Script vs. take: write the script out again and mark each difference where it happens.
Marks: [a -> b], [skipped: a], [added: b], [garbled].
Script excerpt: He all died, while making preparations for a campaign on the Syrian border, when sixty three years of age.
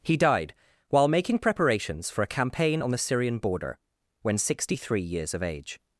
He [skipped: all] died, while making preparations for a campaign on the Syrian border, when sixty three years of age.